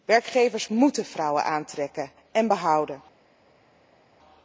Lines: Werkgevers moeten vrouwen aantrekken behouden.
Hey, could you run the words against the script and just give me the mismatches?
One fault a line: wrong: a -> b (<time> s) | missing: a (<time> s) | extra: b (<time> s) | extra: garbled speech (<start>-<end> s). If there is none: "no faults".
extra: en (2.3 s)